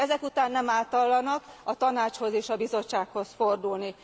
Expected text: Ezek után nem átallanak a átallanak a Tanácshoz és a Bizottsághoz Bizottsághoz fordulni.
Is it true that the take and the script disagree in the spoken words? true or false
true